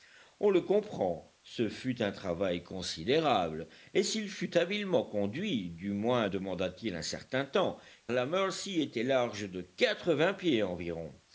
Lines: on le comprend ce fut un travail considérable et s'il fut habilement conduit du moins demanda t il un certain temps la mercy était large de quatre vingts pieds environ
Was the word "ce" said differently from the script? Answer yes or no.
no